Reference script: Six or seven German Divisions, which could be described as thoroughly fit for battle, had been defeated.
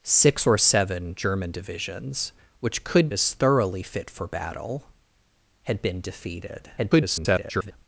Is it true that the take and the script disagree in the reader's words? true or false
true